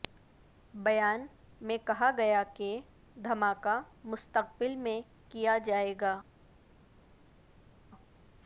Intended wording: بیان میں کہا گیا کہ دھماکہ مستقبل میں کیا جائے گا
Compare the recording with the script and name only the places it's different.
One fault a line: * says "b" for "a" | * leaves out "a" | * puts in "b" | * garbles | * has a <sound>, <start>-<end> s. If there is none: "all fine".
all fine